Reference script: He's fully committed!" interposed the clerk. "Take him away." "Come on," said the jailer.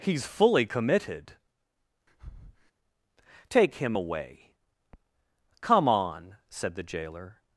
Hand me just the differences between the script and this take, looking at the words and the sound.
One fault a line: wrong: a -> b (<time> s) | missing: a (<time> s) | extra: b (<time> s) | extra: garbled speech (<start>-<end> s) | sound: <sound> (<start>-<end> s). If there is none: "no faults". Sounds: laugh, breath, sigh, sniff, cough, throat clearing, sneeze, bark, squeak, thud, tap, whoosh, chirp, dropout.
missing: interposed the clerk (1.3 s)
sound: breath (2.1-2.7 s)